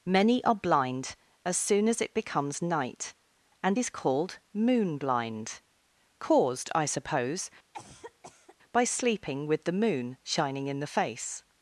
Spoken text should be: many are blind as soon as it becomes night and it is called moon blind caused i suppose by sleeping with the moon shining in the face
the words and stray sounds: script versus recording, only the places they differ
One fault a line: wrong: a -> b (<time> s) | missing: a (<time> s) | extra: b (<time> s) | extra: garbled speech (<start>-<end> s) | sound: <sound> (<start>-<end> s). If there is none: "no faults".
missing: it (3.8 s)
sound: cough (7.7-8.6 s)